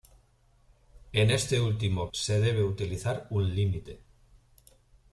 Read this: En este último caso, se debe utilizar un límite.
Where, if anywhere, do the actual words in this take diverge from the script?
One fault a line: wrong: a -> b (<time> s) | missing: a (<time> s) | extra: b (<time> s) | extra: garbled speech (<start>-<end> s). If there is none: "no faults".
missing: caso (2.1 s)